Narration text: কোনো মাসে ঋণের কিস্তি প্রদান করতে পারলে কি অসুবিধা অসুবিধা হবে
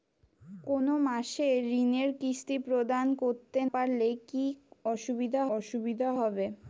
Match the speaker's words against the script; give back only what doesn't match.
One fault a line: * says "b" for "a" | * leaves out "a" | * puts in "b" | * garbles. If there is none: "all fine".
all fine